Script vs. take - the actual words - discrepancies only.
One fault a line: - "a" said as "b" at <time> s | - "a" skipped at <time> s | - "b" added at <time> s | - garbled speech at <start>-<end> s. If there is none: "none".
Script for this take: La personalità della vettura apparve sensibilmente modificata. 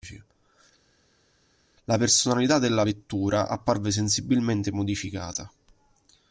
none